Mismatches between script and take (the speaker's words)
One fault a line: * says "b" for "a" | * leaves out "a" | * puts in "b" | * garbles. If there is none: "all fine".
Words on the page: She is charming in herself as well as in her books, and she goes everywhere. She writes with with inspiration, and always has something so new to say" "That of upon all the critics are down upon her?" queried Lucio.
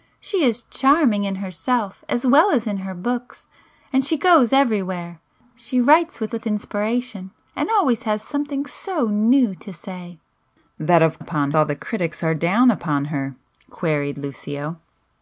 all fine